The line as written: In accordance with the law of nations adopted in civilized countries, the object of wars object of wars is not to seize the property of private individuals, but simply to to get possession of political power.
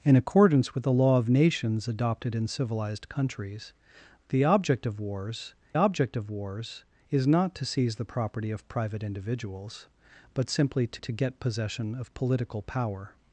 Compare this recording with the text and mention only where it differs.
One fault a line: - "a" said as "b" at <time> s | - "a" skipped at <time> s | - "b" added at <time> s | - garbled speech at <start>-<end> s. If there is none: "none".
none